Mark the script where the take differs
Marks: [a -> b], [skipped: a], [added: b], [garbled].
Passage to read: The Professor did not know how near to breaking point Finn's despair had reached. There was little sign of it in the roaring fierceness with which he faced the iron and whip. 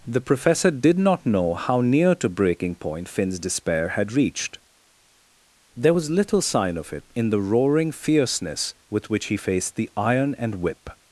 The Professor did not know how near to breaking point Finn's despair had reached. There was little sign of it in the roaring fierceness with which he faced the iron and whip.